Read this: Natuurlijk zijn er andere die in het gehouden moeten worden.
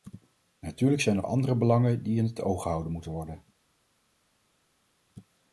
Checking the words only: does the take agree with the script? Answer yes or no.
no